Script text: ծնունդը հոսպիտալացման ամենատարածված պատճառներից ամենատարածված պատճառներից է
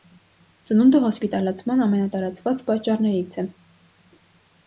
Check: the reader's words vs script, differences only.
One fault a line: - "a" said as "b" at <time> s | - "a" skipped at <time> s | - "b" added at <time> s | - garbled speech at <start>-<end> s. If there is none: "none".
- "ամենատարածված պատճառներից" skipped at 3.4 s